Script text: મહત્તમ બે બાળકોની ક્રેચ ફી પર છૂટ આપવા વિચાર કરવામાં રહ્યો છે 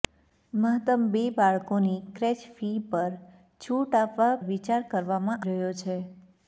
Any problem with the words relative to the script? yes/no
no